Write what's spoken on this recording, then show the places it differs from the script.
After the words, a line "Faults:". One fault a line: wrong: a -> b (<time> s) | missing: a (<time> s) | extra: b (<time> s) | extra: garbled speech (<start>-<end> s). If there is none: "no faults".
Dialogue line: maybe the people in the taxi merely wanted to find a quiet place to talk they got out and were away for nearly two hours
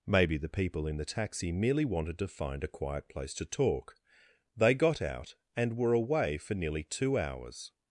maybe the people in the taxi merely wanted to find a quiet place to talk they got out and were away for nearly two hours
Faults:
no faults